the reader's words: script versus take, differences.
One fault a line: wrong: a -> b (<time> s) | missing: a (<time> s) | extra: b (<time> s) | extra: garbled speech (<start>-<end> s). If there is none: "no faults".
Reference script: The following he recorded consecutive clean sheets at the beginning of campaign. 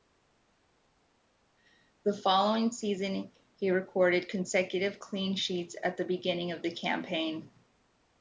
extra: season (2.7 s)
extra: the (6.6 s)